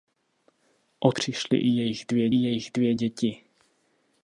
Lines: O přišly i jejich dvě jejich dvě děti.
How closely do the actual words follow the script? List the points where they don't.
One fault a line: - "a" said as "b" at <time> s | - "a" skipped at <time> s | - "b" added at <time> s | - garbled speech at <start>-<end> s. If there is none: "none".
none